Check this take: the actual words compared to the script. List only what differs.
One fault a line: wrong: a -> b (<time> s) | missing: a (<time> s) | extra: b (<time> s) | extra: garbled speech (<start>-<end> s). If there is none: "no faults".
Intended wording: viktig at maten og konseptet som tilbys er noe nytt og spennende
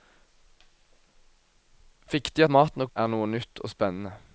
missing: at (2.4 s)
missing: konseptet som tilbys (2.9 s)